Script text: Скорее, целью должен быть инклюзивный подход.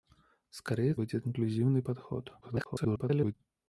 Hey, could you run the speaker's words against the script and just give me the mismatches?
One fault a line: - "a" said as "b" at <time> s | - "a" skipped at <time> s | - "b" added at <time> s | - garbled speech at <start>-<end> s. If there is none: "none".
- "целью должен" skipped at 0.9 s
- garbled speech at 2.4-3.3 s